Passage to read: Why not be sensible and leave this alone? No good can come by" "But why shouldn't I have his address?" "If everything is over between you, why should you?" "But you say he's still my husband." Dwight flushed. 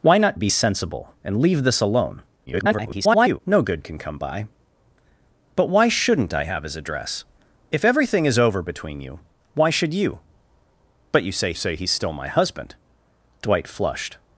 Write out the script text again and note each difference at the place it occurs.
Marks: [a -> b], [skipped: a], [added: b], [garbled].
Why not be sensible and leave this alone? [garbled] No good can come by" "But why shouldn't I have his address?" "If everything is over between you, why should you?" "But you say [added: say] he's still my husband." Dwight flushed.